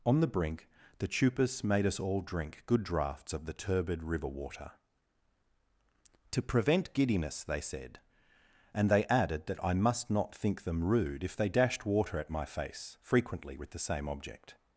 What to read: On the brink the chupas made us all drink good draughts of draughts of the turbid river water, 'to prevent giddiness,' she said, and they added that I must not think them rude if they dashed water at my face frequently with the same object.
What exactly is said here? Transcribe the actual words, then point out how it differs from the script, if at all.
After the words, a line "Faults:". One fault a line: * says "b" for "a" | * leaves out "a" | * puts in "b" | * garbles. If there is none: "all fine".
On the brink the chupas made us all drink good draughts of the turbid river water, 'to prevent giddiness,' they said, and they added that I must not think them rude if they dashed water at my face frequently with the same object.
Faults:
* leaves out "draughts of"
* says "they" for "she"